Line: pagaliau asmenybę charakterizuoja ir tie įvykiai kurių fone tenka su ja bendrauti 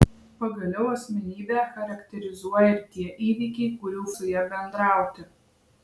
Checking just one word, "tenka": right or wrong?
wrong